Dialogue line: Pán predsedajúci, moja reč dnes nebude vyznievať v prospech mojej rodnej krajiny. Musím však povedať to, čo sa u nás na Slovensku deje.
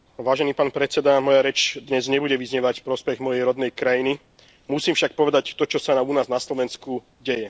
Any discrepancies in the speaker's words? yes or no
no